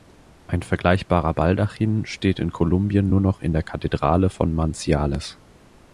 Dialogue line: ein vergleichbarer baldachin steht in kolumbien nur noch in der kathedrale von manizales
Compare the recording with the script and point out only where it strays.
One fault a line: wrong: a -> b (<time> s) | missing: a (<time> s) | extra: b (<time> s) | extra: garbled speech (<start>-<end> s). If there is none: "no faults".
no faults